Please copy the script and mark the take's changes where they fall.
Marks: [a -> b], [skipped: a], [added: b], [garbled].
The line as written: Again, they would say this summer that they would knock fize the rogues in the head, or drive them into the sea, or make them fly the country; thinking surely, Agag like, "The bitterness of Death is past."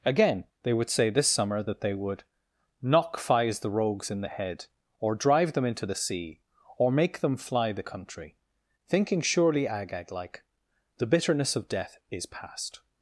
Again, they would say this summer that they would knock fize the rogues in the head, or drive them into the sea, or make them fly the country; thinking surely, Agag like, "The bitterness of Death is past."